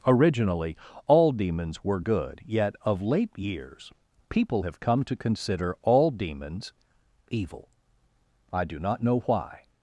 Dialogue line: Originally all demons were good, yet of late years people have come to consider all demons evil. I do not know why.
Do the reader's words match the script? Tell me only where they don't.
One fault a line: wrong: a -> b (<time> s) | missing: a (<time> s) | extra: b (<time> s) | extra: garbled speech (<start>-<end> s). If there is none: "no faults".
no faults